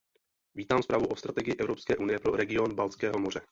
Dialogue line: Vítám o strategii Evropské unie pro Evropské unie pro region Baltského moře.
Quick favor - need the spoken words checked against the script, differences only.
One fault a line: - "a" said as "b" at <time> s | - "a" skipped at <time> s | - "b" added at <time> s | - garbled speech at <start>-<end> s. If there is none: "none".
- "zprávu" added at 0.8 s
- "Evropské unie pro" skipped at 2.4 s